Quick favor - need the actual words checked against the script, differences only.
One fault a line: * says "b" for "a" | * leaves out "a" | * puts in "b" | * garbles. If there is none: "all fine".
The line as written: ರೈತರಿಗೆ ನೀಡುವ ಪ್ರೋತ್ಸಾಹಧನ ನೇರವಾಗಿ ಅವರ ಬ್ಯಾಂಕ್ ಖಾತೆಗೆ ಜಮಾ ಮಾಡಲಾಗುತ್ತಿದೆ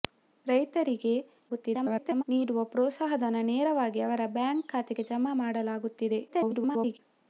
* garbles
* garbles